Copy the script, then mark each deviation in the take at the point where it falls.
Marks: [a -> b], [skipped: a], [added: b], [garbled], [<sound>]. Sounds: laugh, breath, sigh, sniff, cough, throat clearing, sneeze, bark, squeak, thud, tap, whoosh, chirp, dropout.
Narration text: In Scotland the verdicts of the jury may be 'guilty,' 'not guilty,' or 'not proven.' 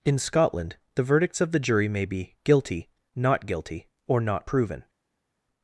In Scotland the verdicts of the jury may be 'guilty,' 'not guilty,' or 'not proven.'